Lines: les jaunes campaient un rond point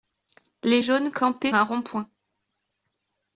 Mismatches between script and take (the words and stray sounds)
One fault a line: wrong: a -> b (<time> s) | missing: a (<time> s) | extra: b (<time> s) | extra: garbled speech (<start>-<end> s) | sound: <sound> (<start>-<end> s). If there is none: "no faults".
no faults